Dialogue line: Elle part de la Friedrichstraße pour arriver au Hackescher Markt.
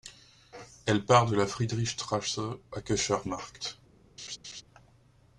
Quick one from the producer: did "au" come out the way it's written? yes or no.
no